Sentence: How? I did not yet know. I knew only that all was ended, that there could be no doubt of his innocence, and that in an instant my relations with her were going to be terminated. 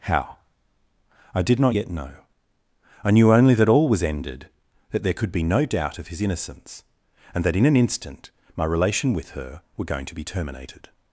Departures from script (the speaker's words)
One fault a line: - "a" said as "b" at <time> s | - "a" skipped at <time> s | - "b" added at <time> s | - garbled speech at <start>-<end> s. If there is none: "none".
- "relations" said as "relation" at 8.6 s